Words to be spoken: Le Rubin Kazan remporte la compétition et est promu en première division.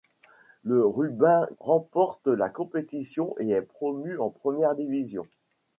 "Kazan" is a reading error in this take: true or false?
true